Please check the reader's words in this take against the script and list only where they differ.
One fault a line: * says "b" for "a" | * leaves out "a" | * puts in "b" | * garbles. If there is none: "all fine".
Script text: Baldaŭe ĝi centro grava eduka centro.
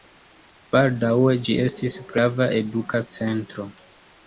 * says "estis" for "centro"